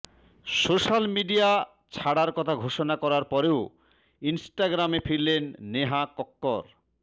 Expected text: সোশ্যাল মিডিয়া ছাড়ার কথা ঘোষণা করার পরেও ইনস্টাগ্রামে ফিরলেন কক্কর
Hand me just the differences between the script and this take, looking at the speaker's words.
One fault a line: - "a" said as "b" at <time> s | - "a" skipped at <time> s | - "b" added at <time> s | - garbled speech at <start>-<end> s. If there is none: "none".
- "নেহা" added at 5.7 s